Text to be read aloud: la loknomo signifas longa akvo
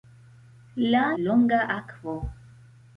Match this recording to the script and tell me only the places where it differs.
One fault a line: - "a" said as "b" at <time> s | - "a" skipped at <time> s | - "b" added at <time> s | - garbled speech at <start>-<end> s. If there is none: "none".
- "loknomo signifas" skipped at 1.0 s